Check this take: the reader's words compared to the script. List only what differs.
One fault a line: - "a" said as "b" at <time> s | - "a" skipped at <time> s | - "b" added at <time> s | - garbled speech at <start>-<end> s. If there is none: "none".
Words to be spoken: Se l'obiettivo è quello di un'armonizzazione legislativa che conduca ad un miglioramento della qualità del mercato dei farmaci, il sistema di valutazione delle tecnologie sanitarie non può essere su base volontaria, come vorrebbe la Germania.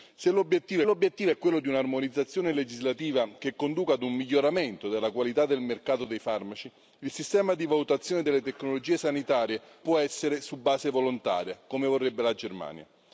- "l'obiettivo" added at 0.8 s
- "non" skipped at 9.6 s